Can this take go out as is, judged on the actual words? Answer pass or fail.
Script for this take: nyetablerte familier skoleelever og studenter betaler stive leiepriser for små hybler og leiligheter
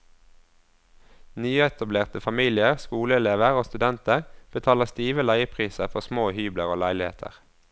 pass